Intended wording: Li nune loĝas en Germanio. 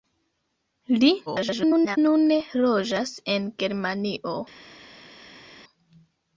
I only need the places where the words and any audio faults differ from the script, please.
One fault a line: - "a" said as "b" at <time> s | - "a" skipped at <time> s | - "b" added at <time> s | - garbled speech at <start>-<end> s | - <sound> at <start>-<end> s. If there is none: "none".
- garbled speech at 1.3-2.0 s